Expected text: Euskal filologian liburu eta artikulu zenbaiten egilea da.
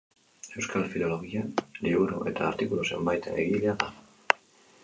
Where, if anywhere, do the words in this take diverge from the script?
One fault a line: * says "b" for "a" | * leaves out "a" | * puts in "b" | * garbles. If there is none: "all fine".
all fine